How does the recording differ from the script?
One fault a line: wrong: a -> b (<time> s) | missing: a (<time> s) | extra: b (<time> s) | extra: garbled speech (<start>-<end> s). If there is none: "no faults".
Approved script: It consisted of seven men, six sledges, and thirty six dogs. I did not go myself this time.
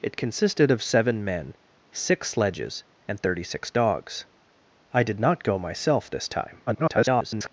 extra: garbled speech (6.7-7.5 s)